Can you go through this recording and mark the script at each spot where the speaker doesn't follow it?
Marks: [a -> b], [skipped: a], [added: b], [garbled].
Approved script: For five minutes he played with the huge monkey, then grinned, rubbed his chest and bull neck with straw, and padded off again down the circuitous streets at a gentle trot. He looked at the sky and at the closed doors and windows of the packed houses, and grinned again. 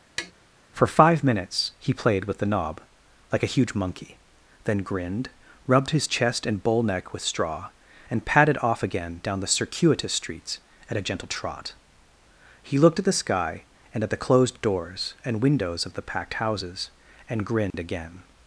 For five minutes he played with the [added: knob like a] huge monkey, then grinned, rubbed his chest and bull neck with straw, and padded off again down the circuitous streets at a gentle trot. He looked at the sky and at the closed doors and windows of the packed houses, and grinned again.